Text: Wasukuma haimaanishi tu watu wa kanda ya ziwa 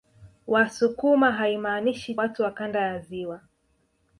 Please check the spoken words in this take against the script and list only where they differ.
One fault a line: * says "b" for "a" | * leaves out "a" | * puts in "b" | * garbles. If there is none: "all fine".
* leaves out "tu"